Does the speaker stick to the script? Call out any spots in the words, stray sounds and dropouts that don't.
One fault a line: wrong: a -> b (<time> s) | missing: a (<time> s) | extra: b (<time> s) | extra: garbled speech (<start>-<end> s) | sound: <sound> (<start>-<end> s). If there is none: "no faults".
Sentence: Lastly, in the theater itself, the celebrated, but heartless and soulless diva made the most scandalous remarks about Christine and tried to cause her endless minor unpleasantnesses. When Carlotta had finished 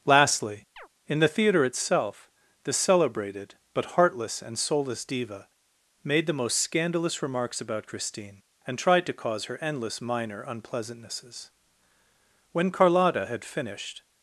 sound: chirp (0.8-0.9 s)